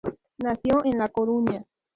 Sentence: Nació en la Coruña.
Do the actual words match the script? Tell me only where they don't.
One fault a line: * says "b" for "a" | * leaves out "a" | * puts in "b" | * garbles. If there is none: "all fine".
all fine